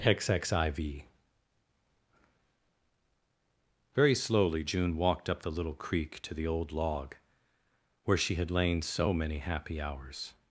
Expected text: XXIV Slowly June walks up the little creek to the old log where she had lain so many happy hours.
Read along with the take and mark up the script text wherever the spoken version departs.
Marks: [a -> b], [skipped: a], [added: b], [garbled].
XXIV [added: Very] Slowly June [walks -> walked] up the little creek to the old log where she had lain so many happy hours.